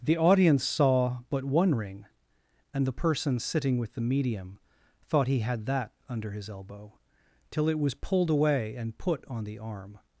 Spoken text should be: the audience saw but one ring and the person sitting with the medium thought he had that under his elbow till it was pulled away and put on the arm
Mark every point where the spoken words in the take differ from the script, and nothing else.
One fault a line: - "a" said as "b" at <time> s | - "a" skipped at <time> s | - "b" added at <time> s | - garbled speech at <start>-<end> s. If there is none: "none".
none